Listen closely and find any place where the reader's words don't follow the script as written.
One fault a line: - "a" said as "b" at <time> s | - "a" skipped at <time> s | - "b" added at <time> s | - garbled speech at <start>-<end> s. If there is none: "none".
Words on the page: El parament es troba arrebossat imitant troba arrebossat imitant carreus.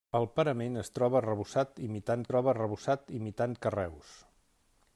none